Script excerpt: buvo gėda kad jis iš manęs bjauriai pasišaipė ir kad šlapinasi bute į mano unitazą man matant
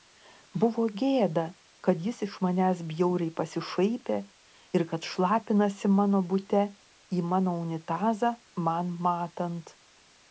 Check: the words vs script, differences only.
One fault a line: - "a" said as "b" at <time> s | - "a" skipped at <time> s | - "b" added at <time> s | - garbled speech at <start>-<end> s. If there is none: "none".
- "mano" added at 6.0 s